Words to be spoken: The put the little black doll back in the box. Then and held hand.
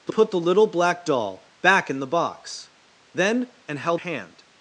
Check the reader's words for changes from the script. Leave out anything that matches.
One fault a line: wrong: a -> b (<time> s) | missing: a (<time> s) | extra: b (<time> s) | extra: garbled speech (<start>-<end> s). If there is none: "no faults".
no faults